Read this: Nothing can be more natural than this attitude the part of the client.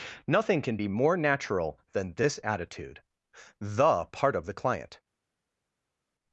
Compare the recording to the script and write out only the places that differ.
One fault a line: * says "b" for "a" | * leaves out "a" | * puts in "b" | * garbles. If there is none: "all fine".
all fine